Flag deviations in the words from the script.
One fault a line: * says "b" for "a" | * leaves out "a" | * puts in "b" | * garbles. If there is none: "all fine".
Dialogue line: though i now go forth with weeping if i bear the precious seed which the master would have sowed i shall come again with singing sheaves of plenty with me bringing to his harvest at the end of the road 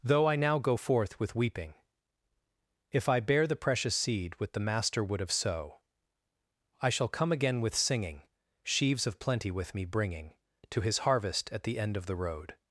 * says "with" for "which"
* says "sow" for "sowed"